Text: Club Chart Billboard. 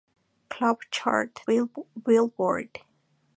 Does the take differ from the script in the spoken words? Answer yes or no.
no